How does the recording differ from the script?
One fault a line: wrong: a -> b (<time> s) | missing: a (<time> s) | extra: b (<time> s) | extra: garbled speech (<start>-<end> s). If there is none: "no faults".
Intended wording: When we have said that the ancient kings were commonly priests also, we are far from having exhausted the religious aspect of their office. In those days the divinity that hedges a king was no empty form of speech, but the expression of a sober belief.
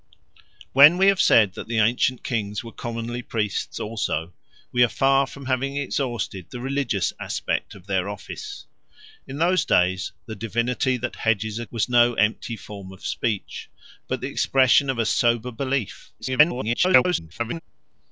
missing: king (11.7 s)
extra: garbled speech (16.2-17.6 s)